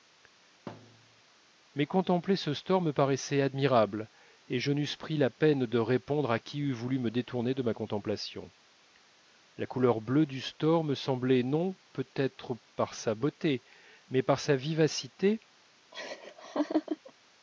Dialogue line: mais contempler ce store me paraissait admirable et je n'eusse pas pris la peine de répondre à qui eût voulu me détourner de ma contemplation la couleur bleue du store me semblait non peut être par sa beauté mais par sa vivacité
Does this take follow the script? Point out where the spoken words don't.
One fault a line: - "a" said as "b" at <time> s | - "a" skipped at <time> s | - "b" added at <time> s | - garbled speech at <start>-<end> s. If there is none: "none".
- "pas" skipped at 4.9 s